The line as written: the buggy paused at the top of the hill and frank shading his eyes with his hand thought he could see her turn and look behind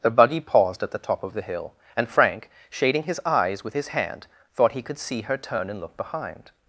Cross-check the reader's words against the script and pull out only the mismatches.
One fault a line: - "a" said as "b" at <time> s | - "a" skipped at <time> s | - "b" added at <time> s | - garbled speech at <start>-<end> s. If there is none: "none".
none